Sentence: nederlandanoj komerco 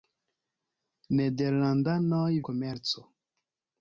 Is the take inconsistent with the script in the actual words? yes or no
no